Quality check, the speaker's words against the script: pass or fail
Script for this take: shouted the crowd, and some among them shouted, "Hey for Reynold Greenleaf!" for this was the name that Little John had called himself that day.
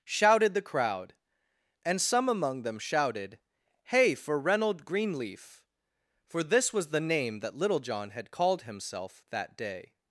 pass